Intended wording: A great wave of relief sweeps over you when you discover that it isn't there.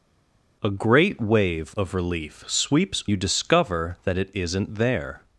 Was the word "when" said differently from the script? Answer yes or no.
yes